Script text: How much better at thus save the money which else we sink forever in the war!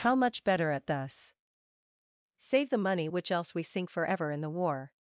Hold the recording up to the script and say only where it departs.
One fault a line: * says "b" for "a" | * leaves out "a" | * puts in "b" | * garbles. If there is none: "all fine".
all fine